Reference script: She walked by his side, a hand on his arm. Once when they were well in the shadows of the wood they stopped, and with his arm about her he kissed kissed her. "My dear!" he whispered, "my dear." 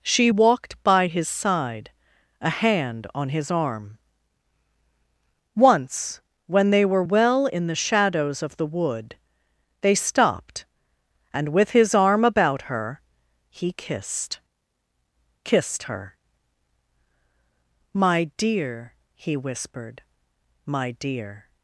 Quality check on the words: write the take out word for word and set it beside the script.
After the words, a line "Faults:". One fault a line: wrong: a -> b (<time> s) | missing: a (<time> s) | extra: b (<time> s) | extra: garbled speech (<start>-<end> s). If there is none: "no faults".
She walked by his side, a hand on his arm. Once when they were well in the shadows of the wood they stopped, and with his arm about her he kissed kissed her. "My dear!" he whispered, "my dear."
Faults:
no faults